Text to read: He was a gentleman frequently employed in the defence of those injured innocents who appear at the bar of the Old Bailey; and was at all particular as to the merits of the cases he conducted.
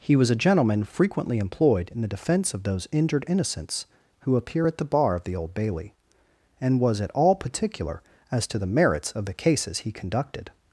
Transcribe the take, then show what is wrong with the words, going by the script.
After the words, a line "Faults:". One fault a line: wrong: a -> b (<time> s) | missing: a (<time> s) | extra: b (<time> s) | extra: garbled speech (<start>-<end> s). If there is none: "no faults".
He was a gentleman frequently employed in the defence of those injured innocents who appear at the bar of the Old Bailey; and was at all particular as to the merits of the cases he conducted.
Faults:
no faults